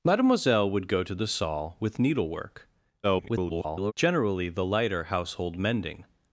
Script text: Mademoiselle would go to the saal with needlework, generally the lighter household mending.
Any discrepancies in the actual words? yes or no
yes